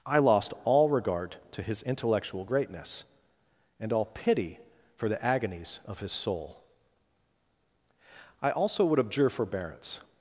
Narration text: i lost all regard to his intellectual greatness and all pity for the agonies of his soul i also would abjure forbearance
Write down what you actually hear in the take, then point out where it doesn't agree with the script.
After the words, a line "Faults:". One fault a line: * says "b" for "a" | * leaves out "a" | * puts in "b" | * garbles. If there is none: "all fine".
i lost all regard to his intellectual greatness and all pity for the agonies of his soul i also would abjure forbearance
Faults:
all fine